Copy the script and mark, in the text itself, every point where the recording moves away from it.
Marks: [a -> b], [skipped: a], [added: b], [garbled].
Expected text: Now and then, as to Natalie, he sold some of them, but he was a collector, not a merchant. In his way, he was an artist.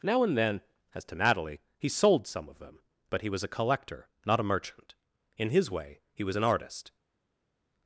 Now and then, as to Natalie, he sold some of them, but he was a collector, not a merchant. In his way, he was an artist.